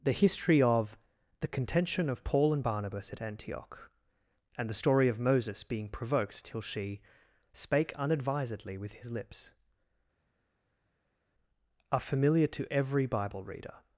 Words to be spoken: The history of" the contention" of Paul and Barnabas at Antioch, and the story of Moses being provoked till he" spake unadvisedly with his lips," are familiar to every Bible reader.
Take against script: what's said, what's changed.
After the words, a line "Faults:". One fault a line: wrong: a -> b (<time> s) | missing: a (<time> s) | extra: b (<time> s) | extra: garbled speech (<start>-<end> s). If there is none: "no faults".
The history of" the contention" of Paul and Barnabas at Antioch, and the story of Moses being provoked till she" spake unadvisedly with his lips," are familiar to every Bible reader.
Faults:
wrong: he -> she (6.6 s)